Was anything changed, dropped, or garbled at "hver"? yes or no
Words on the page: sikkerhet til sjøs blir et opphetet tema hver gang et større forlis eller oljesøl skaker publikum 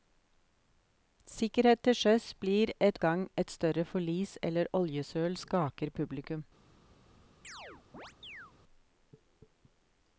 yes